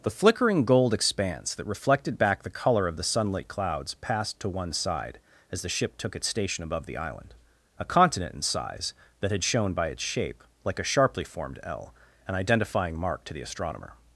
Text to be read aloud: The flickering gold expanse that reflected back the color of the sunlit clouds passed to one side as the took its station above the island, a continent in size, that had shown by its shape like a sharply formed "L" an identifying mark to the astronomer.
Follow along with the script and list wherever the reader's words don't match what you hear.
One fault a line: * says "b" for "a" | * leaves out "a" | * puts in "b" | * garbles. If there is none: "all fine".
* puts in "ship"